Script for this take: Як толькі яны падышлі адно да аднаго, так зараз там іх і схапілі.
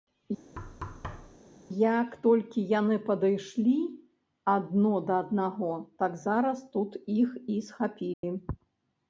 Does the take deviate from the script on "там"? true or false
true